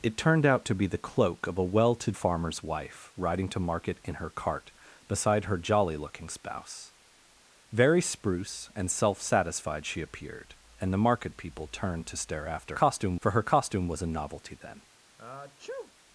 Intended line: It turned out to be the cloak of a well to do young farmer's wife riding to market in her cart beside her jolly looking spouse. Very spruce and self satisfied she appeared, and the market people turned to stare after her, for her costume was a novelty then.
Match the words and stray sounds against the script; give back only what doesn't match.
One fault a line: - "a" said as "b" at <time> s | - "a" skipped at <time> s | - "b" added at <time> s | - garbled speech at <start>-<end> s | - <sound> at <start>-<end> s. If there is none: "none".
- "do young" skipped at 2.1 s
- "her" said as "costume" at 12.7 s
- sneeze at 15.2-15.9 s